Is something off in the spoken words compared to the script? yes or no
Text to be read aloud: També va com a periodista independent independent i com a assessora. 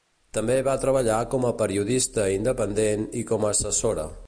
yes